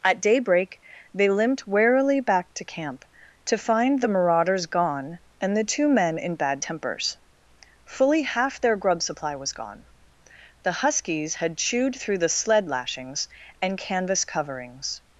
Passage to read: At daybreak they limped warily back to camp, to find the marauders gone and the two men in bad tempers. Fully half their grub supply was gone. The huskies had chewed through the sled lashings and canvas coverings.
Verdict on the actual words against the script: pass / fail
pass